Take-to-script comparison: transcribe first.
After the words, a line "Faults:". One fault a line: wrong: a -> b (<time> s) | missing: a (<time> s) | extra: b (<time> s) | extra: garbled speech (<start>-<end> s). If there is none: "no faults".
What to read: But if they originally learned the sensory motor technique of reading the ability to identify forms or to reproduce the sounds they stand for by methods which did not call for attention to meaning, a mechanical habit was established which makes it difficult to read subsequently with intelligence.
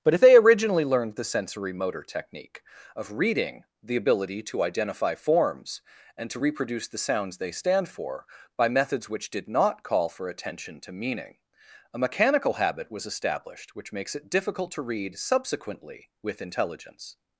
But if they originally learned the sensory motor technique of reading the ability to identify forms and to reproduce the sounds they stand for by methods which did not call for attention to meaning, a mechanical habit was established which makes it difficult to read subsequently with intelligence.
Faults:
wrong: or -> and (6.2 s)